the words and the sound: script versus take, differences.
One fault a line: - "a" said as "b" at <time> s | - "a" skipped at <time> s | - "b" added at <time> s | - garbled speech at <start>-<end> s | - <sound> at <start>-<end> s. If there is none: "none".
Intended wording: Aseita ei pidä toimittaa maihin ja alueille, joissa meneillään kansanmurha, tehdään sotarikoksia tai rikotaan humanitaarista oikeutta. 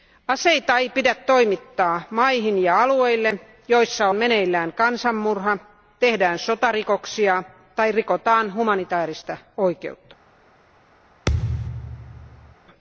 - thud at 11.3-12.6 s